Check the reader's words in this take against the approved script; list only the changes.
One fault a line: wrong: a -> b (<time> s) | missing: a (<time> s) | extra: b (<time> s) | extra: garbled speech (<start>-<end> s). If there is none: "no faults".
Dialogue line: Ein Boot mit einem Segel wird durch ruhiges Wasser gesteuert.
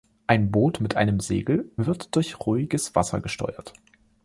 no faults